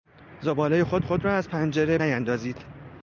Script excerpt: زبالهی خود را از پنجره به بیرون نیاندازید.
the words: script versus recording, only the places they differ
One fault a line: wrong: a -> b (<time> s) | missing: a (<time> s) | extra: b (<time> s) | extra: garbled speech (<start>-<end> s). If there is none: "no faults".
extra: خود (1.0 s)
missing: به بیرون (2.0 s)